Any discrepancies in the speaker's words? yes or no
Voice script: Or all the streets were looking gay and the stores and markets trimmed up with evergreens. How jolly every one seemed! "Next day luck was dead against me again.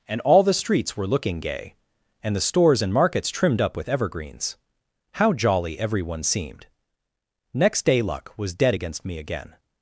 yes